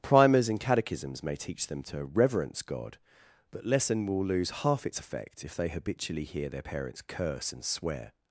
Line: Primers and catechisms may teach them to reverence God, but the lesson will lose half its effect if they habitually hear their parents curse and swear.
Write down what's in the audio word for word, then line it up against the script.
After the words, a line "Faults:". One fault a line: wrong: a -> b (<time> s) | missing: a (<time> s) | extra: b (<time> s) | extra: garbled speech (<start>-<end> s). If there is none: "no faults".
Primers and catechisms may teach them to reverence God, but lesson will lose half its effect if they habitually hear their parents curse and swear.
Faults:
missing: the (3.6 s)